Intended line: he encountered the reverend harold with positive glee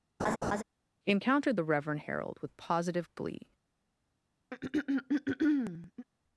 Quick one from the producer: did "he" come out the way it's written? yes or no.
no